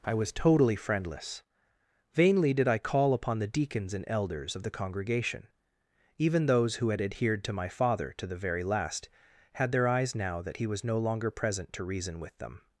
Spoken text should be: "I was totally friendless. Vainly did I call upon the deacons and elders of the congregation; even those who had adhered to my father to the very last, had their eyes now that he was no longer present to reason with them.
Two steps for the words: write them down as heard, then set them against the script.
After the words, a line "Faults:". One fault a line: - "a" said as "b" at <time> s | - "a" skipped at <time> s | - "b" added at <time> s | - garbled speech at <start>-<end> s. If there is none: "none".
"I was totally friendless. Vainly did I call upon the deacons and elders of the congregation; even those who had adhered to my father to the very last, had their eyes now that he was no longer present to reason with them.
Faults:
none